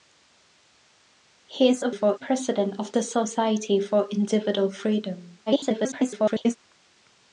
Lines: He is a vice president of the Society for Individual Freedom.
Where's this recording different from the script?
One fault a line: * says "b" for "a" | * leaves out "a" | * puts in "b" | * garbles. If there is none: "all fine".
* says "for" for "vice"
* garbles